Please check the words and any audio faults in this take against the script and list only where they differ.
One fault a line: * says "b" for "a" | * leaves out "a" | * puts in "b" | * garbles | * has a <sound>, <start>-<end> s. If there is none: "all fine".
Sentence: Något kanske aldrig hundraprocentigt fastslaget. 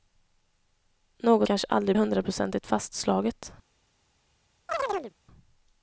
* has a chirp, 4.7-5.1 s